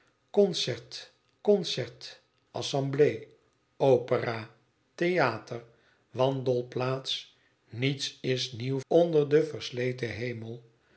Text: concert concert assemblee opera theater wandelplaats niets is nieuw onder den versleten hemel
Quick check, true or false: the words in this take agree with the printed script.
true